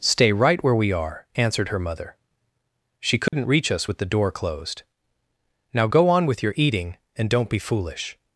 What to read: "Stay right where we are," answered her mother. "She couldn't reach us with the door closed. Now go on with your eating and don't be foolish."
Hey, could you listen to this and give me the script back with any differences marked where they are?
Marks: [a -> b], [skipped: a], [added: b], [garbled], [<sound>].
"Stay right where we are," answered her mother. "She couldn't [dropout] reach us with the door closed. Now go on with your eating and don't be foolish."